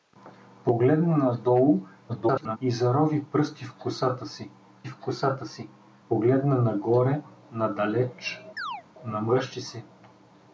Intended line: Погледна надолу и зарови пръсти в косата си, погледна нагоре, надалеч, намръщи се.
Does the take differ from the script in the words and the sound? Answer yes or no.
yes